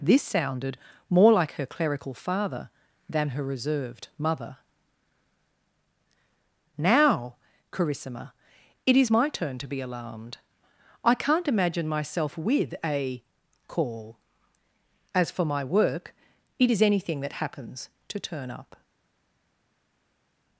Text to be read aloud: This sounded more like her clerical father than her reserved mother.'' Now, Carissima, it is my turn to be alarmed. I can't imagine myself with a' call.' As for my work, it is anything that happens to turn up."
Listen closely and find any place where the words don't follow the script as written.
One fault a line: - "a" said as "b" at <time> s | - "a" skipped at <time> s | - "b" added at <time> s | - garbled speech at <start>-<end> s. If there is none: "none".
none